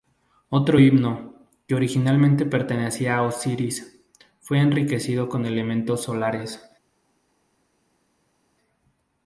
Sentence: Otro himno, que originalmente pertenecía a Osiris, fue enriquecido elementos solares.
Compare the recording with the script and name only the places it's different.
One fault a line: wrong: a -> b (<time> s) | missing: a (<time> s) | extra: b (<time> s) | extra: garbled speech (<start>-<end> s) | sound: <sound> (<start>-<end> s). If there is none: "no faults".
extra: con (5.3 s)